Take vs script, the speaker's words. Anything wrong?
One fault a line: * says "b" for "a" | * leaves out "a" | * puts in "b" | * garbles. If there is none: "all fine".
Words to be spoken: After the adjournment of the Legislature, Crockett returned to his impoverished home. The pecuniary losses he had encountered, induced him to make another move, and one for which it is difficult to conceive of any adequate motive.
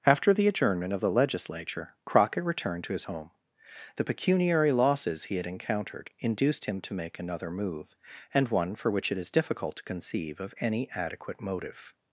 * leaves out "impoverished"